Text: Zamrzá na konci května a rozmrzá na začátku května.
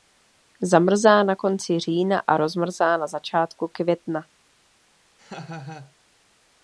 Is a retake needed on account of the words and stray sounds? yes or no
yes